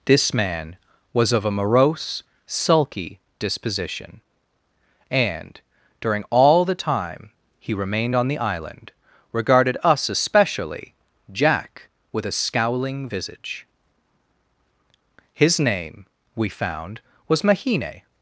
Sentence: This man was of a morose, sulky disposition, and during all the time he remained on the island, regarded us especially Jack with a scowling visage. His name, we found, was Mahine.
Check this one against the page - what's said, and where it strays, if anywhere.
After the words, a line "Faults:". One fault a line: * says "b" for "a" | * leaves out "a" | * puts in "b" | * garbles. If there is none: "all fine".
This man was of a morose, sulky disposition, and during all the time he remained on the island, regarded us especially Jack with a scowling visage. His name, we found, was Mahine.
Faults:
all fine